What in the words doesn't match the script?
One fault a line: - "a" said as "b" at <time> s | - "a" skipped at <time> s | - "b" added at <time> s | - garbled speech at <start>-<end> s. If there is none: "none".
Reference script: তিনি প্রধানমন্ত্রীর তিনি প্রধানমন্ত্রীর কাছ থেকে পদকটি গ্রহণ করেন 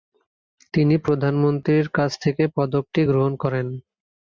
- "তিনি প্রধানমন্ত্রীর" skipped at 1.9 s